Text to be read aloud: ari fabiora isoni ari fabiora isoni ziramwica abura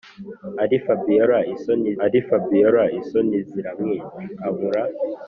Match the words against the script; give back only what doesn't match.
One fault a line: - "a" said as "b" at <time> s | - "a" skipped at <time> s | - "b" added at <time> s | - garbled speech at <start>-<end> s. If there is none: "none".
none